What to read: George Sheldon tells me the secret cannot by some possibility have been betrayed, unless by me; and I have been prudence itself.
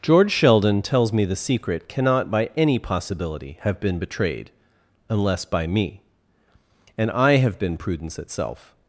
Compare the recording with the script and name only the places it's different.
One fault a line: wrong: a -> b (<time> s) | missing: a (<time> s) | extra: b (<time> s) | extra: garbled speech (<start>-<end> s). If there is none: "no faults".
wrong: some -> any (2.6 s)